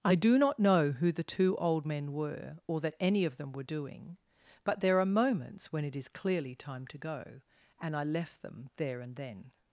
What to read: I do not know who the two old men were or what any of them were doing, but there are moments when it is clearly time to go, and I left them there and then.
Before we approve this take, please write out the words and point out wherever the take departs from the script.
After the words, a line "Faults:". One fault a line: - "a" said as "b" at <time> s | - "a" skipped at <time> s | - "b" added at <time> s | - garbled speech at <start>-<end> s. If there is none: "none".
I do not know who the two old men were or that any of them were doing, but there are moments when it is clearly time to go, and I left them there and then.
Faults:
- "what" said as "that" at 2.8 s